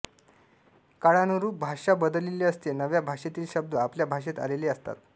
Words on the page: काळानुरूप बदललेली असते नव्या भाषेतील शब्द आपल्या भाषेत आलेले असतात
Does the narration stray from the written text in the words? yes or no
yes